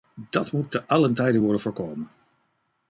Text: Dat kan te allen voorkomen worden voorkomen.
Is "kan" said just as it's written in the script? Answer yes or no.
no